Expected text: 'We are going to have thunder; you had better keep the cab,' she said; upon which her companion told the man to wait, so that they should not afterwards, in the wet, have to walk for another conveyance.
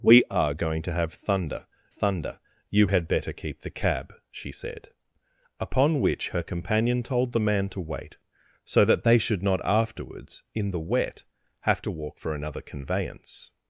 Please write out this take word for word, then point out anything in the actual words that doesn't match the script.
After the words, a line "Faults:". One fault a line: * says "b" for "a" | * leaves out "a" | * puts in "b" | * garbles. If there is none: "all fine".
'We are going to have thunder thunder; you had better keep the cab,' she said; upon which her companion told the man to wait, so that they should not afterwards, in the wet, have to walk for another conveyance.
Faults:
* puts in "thunder"